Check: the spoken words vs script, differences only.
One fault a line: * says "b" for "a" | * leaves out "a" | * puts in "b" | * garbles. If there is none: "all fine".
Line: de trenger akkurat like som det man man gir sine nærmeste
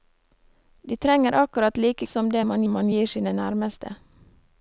all fine